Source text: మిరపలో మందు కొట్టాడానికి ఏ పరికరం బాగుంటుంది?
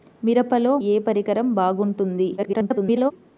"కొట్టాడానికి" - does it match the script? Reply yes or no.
no